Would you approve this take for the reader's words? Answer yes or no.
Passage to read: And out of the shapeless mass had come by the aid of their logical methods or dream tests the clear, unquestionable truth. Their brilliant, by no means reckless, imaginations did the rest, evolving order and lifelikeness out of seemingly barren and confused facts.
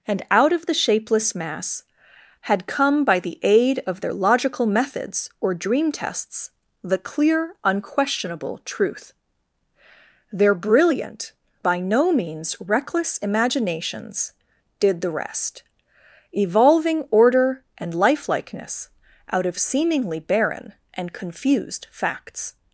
yes